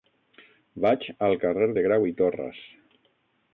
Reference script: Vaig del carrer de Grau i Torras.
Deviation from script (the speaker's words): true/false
true